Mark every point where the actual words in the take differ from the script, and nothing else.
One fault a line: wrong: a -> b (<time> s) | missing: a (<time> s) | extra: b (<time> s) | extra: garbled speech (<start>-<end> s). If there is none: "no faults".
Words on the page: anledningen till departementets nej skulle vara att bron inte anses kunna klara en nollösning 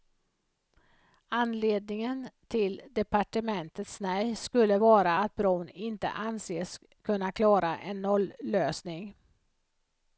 no faults